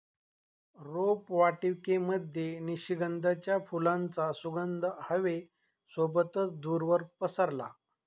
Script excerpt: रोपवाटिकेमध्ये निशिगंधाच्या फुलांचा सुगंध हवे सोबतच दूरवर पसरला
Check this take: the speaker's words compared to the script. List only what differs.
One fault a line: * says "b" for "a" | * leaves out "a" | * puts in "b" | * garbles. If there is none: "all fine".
all fine